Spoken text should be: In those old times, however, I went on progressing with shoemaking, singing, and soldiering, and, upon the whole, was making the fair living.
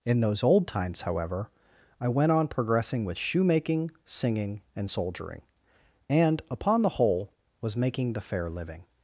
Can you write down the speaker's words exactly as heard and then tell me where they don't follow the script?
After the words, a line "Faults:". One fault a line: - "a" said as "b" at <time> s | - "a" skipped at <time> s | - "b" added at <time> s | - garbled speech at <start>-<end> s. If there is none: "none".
In those old times, however, I went on progressing with shoemaking, singing, and soldiering, and, upon the whole, was making the fair living.
Faults:
none